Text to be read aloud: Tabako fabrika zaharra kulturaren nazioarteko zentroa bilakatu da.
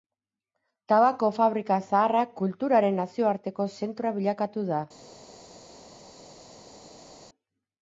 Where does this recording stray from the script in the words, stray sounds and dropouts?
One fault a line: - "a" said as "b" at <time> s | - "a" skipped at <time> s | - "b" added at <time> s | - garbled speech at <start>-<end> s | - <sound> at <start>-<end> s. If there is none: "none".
none